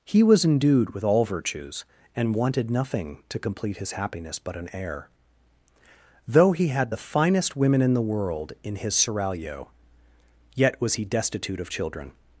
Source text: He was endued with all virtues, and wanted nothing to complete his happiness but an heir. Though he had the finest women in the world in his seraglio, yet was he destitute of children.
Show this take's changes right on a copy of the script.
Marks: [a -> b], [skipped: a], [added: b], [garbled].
He was endued with all virtues, and wanted nothing to complete his happiness but an heir. Though he had the finest women in the world in his seraglio, yet was he destitute of children.